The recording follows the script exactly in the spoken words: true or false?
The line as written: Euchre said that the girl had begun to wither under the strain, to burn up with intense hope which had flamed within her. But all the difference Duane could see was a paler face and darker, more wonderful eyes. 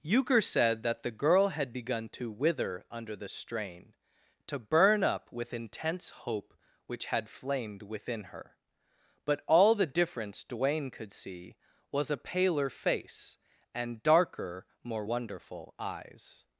true